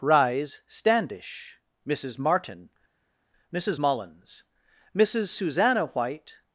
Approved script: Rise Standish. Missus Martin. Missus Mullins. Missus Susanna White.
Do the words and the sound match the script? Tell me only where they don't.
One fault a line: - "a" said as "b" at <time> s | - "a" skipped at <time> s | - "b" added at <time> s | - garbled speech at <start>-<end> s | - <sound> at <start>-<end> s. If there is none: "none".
none